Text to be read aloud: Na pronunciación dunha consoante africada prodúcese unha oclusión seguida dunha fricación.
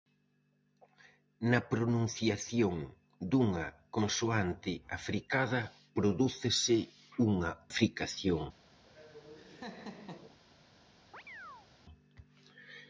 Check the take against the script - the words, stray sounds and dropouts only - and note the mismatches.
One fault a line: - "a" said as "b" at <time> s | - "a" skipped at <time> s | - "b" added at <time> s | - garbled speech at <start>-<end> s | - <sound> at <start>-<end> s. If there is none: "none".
- "oclusión seguida dunha" skipped at 7.5 s
- laugh at 8.8-10.4 s
- chirp at 11.1-11.7 s